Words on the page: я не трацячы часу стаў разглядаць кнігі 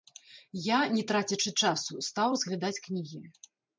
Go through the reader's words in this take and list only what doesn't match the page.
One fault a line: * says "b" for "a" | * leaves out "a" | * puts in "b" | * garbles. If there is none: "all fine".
all fine